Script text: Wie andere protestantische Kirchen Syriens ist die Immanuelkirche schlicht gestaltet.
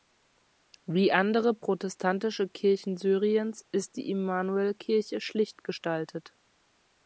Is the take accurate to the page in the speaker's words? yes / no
yes